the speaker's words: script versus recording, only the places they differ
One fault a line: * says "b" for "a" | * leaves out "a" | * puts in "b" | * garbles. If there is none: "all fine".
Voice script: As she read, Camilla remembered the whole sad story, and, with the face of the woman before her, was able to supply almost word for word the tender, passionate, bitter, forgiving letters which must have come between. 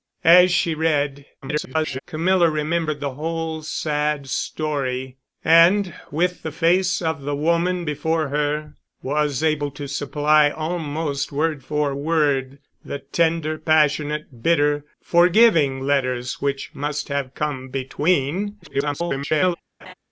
* garbles
* garbles